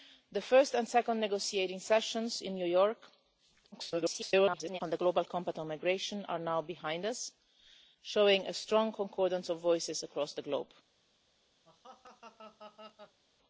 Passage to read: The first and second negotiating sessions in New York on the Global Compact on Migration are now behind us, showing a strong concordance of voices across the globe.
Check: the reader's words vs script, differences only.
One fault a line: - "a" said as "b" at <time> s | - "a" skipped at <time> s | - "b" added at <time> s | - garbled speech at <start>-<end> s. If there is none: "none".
- garbled speech at 3.7-4.8 s